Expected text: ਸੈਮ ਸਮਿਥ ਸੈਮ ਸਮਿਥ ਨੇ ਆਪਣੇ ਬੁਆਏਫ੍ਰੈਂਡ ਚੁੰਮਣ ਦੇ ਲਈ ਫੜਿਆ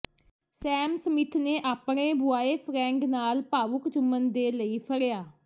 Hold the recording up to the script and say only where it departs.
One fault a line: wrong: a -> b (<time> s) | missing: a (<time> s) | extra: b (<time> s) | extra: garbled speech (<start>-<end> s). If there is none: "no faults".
missing: ਸੈਮ ਸਮਿਥ (1.4 s)
extra: ਨਾਲ ਭਾਵੁਕ (3.1 s)